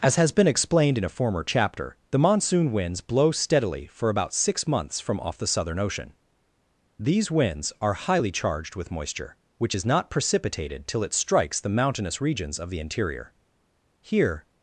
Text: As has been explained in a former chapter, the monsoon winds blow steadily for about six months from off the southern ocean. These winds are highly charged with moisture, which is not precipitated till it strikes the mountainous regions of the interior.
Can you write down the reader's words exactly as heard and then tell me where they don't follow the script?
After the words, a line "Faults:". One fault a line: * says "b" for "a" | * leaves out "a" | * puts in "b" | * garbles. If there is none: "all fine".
As has been explained in a former chapter, the monsoon winds blow steadily for about six months from off the southern ocean. These winds are highly charged with moisture, which is not precipitated till it strikes the mountainous regions of the interior. Here
Faults:
* puts in "Here"